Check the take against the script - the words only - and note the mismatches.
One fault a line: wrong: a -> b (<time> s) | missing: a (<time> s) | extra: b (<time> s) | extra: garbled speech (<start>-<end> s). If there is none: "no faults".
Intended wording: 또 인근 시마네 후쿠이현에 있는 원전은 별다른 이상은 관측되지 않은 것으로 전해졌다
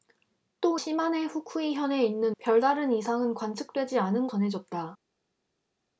missing: 인근 (0.8 s)
missing: 원전은 (2.4 s)
missing: 것으로 (4.3 s)